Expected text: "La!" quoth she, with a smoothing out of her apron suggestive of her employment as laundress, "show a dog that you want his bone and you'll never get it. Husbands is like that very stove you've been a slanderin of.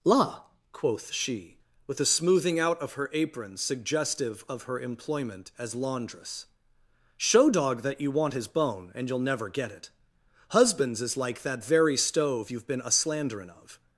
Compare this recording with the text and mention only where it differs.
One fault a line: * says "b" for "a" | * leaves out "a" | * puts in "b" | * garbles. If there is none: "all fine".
* leaves out "a"